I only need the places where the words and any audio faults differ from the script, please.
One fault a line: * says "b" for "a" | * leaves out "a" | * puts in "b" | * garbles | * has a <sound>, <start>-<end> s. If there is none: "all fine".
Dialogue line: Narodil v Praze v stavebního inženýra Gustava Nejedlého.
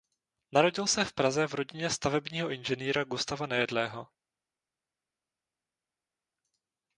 * puts in "se"
* puts in "rodině"